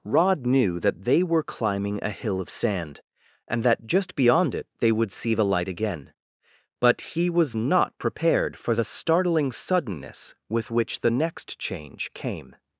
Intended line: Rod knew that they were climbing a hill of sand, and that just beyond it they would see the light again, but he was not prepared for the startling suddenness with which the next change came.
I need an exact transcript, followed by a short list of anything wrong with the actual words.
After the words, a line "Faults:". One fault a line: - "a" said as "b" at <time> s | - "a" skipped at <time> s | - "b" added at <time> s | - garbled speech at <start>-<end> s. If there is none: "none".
Rod knew that they were climbing a hill of sand, and that just beyond it they would see the light again, but he was not prepared for the startling suddenness with which the next change came.
Faults:
none